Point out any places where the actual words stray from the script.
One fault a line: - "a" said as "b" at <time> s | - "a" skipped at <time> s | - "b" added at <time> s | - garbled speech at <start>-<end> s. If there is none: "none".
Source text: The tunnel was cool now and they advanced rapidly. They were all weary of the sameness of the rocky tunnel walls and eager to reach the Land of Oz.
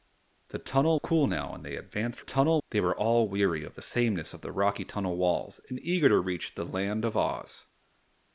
- "was" skipped at 1.0 s
- "rapidly" said as "tunnel" at 2.2 s